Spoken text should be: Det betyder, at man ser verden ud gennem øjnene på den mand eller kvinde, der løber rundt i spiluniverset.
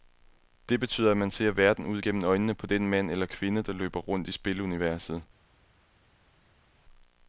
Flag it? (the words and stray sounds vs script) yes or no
no